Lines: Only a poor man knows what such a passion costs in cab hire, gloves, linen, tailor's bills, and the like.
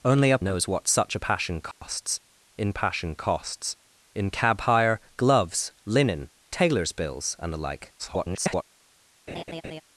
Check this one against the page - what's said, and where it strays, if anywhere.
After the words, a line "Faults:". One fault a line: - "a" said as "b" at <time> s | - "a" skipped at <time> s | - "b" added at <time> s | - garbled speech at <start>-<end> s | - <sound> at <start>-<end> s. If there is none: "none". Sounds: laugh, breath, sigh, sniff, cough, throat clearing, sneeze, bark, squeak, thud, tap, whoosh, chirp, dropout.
Only a knows what such a passion costs in passion costs in cab hire, gloves, linen, tailor's bills, and the like. [garbled]
Faults:
- "poor man" skipped at 0.4 s
- dropout at 1.7-1.8 s
- "passion costs in" added at 2.7 s
- garbled speech at 8.0-8.6 s
- laugh at 9.3-9.8 s